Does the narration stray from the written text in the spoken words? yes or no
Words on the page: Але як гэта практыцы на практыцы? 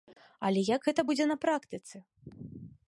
yes